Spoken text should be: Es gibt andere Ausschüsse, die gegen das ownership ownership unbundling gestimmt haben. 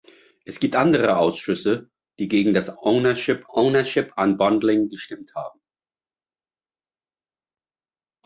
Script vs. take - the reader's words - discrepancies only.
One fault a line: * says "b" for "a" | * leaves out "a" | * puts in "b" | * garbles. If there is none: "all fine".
all fine